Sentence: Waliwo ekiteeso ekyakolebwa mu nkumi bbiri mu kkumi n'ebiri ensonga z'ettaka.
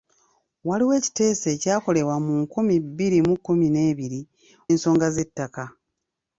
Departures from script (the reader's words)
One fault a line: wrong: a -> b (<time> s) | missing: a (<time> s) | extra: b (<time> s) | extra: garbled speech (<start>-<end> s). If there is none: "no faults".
no faults